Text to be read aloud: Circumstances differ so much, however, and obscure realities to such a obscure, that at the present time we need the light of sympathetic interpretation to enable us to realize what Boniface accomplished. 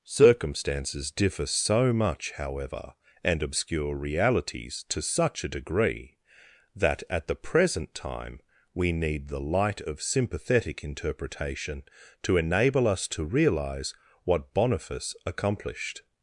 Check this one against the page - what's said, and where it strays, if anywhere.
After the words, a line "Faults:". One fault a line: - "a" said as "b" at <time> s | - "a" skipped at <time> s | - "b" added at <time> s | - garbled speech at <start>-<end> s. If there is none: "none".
Circumstances differ so much, however, and obscure realities to such a degree, that at the present time we need the light of sympathetic interpretation to enable us to realize what Boniface accomplished.
Faults:
- "obscure" said as "degree" at 5.5 s